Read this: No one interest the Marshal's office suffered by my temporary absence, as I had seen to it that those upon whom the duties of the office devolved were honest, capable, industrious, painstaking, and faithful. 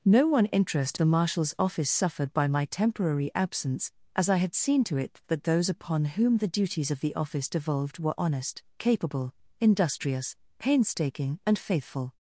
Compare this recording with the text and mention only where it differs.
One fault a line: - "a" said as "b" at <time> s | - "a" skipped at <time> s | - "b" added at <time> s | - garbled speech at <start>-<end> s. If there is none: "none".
none